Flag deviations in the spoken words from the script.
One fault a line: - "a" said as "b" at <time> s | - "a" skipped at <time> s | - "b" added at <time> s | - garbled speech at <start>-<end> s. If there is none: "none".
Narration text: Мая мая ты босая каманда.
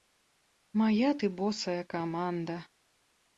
- "мая" skipped at 1.1 s